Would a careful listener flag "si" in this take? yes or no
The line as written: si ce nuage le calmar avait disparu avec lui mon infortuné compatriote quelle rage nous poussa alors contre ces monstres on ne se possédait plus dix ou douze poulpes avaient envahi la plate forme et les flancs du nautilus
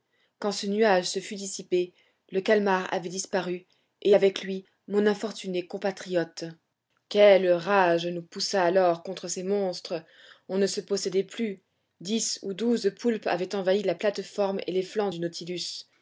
yes